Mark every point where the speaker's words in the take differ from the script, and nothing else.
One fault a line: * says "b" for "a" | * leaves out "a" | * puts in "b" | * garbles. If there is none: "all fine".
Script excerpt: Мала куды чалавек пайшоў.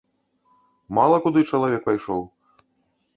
all fine